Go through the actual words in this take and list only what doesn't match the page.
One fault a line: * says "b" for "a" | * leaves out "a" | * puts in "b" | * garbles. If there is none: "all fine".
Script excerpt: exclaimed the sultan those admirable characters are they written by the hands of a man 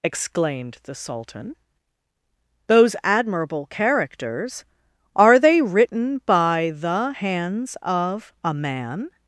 all fine